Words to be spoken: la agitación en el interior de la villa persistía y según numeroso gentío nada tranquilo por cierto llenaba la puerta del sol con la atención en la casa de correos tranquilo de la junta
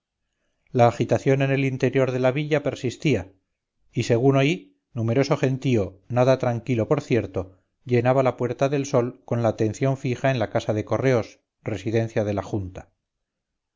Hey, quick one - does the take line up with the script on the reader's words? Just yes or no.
no